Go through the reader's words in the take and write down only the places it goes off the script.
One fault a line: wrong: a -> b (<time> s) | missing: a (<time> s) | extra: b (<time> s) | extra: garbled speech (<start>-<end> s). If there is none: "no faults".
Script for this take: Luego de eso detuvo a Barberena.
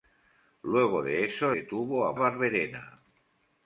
no faults